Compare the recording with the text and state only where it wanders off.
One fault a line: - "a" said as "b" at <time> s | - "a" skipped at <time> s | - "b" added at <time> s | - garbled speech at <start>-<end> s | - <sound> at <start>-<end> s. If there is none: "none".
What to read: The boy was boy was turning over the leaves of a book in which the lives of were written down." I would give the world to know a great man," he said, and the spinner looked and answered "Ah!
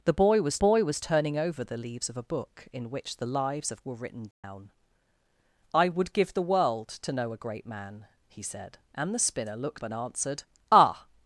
- dropout at 4.3-4.4 s